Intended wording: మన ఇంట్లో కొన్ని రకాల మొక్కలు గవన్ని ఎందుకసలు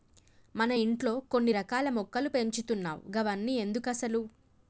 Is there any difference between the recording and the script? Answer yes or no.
yes